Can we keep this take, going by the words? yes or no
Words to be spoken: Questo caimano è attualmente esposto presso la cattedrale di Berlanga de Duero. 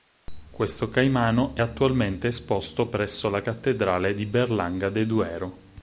yes